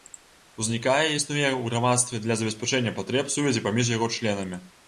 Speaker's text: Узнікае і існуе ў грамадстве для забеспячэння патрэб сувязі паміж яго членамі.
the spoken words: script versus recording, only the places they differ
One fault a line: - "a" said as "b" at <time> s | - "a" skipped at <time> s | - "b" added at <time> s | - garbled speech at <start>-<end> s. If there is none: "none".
none